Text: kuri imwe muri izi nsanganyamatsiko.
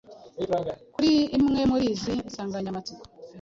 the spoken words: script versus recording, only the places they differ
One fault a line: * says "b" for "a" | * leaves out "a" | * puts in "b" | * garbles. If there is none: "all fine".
all fine